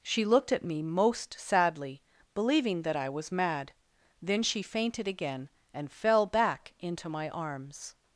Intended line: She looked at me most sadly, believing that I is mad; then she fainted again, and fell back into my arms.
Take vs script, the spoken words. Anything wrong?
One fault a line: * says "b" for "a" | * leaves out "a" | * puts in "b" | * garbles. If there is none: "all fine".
* says "was" for "is"